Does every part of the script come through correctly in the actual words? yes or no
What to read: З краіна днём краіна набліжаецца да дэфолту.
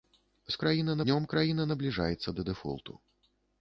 yes